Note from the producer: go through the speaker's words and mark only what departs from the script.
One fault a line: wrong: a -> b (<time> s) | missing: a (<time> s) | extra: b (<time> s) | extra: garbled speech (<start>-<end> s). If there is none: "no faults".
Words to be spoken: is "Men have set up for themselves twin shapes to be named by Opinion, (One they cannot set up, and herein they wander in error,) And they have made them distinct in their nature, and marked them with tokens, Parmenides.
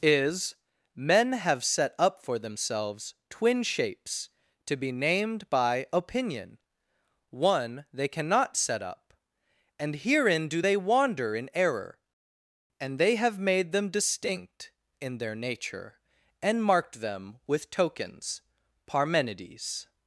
extra: do (10.5 s)